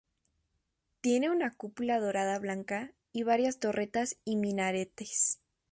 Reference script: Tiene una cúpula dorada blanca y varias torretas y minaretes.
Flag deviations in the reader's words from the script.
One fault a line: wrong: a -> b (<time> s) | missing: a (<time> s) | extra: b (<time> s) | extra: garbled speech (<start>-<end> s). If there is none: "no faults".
no faults